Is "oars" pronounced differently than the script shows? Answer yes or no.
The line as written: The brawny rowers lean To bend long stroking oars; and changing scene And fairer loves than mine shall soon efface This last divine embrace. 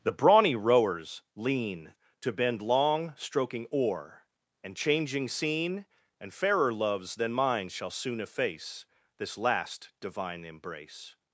yes